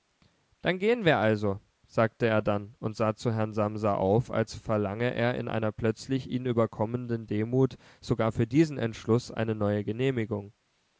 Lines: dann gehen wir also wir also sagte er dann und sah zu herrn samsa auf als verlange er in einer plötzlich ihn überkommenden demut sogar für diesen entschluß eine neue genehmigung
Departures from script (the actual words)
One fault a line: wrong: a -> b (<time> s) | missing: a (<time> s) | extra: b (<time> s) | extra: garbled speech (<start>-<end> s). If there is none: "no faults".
missing: wir also (1.6 s)